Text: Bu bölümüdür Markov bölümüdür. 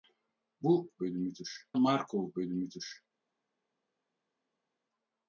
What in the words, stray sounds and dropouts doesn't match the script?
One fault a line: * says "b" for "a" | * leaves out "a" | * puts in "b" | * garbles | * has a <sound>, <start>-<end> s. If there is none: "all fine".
all fine